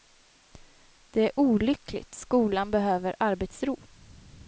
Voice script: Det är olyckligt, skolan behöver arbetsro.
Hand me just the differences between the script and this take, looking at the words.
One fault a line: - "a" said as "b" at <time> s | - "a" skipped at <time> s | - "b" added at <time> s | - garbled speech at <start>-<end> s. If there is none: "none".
none